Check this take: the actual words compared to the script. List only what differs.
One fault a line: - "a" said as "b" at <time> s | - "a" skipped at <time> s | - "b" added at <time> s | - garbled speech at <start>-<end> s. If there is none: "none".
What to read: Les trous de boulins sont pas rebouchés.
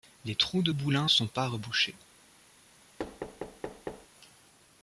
none